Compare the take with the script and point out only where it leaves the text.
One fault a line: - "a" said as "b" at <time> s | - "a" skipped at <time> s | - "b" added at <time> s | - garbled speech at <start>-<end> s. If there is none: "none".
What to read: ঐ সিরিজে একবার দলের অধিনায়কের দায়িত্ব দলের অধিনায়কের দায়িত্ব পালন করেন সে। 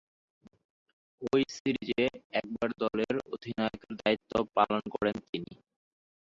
- "দলের অধিনায়কের দায়িত্ব" skipped at 4.3 s
- "সে" said as "তিনি" at 5.3 s